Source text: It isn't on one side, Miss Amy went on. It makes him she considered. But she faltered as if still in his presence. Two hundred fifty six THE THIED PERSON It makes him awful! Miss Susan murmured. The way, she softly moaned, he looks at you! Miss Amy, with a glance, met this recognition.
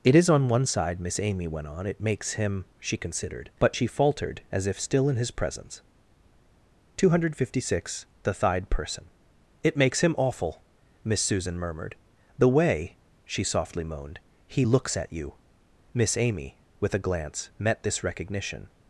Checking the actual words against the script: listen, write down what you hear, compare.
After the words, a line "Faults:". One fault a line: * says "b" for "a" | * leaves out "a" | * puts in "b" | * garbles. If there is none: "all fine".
It is on one side, Miss Amy went on. It makes him she considered. But she faltered as if still in his presence. Two hundred fifty six THE THIED PERSON It makes him awful! Miss Susan murmured. The way, she softly moaned, he looks at you! Miss Amy, with a glance, met this recognition.
Faults:
* says "is" for "isn't"